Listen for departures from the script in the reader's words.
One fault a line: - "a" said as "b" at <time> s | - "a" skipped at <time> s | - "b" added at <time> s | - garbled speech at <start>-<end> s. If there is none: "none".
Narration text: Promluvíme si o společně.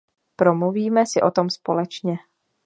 - "tom" added at 1.3 s